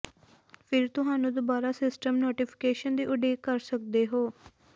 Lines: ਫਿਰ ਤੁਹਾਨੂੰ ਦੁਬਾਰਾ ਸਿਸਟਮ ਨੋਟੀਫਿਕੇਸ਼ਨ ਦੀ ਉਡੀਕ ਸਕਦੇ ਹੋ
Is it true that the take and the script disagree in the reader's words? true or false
true